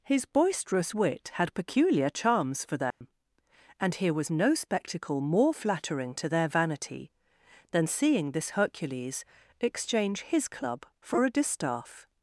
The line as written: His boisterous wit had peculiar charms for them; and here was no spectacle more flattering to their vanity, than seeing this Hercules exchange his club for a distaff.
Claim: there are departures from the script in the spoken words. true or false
false